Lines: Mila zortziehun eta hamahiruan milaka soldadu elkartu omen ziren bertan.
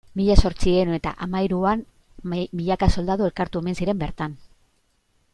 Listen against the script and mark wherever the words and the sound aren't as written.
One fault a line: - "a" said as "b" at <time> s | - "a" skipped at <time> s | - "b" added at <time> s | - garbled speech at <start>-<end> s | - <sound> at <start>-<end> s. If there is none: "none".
none